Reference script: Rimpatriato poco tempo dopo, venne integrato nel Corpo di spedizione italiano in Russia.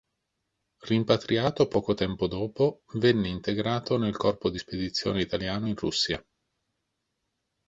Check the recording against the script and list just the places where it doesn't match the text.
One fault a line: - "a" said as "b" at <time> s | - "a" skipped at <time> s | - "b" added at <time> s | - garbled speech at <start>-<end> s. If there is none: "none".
none